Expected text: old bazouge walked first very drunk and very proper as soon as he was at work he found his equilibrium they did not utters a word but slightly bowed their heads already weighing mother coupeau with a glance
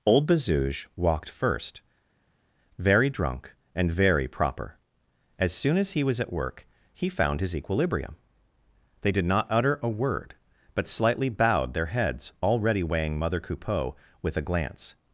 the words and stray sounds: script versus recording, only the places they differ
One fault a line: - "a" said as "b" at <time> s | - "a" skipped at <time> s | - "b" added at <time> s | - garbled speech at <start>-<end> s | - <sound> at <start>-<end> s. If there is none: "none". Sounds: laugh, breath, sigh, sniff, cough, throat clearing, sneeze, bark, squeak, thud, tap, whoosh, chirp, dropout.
- "utters" said as "utter" at 9.5 s